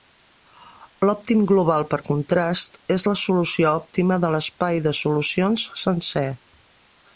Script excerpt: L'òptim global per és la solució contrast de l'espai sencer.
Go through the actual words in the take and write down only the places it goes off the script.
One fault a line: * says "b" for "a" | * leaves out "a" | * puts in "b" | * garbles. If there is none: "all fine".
* puts in "contrast"
* says "òptima" for "contrast"
* puts in "de solucions"